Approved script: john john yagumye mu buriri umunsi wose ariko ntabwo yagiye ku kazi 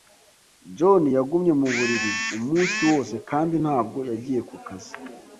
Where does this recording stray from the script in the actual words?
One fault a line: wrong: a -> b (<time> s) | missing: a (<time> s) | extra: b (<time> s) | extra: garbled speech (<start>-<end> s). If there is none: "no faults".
missing: john (1.0 s)
wrong: ariko -> kandi (3.3 s)